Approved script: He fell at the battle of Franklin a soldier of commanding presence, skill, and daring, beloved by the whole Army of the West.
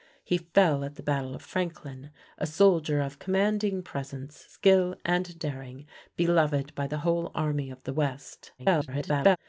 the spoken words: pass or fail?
fail